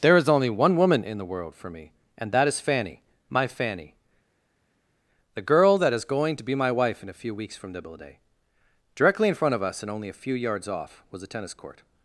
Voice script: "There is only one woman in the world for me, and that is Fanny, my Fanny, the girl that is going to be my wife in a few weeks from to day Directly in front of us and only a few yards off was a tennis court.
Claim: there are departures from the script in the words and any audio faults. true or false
true